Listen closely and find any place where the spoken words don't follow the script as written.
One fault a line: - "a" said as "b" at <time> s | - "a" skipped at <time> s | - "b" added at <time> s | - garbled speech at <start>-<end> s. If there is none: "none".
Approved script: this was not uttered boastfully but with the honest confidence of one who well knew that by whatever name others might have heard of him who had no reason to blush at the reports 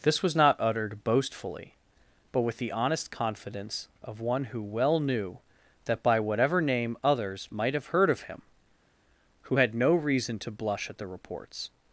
none